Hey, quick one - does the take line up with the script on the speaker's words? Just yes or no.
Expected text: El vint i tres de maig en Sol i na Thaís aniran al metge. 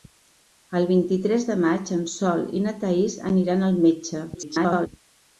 no